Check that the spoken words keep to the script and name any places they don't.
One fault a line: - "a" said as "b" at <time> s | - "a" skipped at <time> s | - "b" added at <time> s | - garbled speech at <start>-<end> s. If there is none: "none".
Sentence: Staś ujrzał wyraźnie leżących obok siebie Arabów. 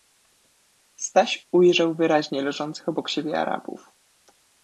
none